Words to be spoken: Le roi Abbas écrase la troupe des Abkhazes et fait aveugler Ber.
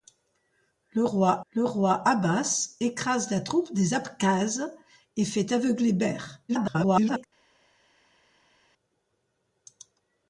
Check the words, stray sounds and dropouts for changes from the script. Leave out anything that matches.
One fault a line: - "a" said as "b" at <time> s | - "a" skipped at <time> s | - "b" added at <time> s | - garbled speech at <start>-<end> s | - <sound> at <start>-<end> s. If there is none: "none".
- "le roi" added at 1.5 s
- garbled speech at 6.5-7.2 s